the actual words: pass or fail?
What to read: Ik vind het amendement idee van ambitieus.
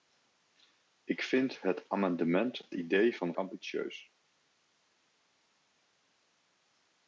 pass